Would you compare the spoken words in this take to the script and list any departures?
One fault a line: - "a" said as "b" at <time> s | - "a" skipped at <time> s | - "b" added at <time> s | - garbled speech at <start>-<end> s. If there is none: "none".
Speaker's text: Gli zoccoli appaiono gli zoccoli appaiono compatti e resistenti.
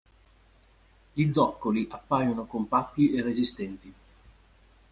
- "gli zoccoli appaiono" skipped at 2.5 s